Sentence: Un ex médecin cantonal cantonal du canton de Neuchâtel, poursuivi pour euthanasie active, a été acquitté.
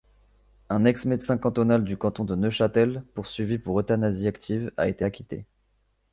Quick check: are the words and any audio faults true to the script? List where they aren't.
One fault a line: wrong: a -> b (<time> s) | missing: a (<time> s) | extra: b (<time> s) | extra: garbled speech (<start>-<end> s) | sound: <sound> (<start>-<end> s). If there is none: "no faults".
missing: cantonal (1.8 s)